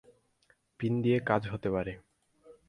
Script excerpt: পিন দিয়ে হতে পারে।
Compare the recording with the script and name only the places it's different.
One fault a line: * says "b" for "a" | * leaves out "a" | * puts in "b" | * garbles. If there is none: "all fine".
* puts in "কাজ"